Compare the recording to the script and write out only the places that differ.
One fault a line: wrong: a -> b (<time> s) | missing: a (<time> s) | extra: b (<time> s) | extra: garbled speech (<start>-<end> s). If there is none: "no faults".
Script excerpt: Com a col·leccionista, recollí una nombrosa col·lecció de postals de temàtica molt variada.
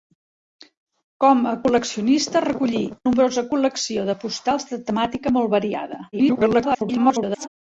missing: una (2.8 s)
extra: garbled speech (6.1-7.5 s)